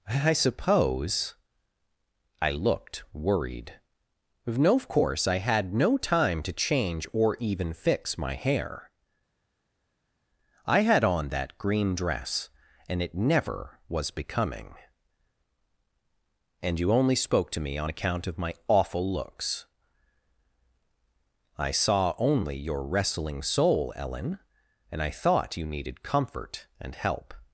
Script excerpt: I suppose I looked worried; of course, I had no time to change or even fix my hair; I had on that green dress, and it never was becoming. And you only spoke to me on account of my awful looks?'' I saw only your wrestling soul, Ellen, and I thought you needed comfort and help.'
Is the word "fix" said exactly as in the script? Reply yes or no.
yes